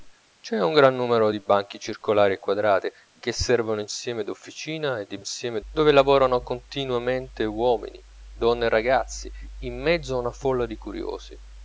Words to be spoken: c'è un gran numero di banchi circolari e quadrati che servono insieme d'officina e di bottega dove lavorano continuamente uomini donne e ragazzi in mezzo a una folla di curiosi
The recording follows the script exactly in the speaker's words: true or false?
false